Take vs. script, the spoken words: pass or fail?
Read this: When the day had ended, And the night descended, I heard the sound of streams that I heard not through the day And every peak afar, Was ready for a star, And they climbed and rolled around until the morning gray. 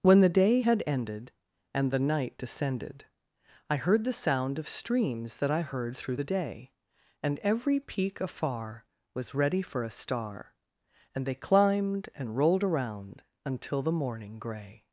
fail